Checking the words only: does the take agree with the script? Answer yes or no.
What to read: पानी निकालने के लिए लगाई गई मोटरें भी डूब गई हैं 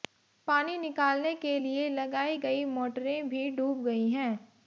yes